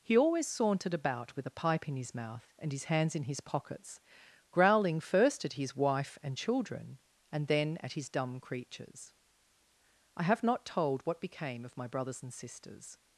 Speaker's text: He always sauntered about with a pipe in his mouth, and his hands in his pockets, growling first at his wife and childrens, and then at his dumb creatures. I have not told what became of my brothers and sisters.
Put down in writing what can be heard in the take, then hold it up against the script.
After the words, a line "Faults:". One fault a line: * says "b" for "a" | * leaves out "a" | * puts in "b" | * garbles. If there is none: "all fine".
He always sauntered about with a pipe in his mouth, and his hands in his pockets, growling first at his wife and children, and then at his dumb creatures. I have not told what became of my brothers and sisters.
Faults:
* says "children" for "childrens"